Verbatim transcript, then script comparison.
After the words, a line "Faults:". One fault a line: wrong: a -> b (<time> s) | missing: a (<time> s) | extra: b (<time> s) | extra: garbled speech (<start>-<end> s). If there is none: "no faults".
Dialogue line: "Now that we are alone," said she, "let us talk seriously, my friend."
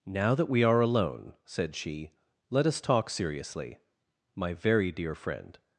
"Now that we are alone," said she, "let us talk seriously, my very dear friend."
Faults:
extra: very dear (4.5 s)